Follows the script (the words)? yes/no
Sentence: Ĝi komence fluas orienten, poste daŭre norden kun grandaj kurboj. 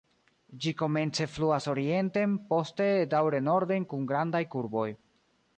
yes